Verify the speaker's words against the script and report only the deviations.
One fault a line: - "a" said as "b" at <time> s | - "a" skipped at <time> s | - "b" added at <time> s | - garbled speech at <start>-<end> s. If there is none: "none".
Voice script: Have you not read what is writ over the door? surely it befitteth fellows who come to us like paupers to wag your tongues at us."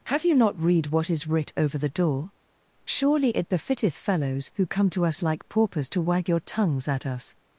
none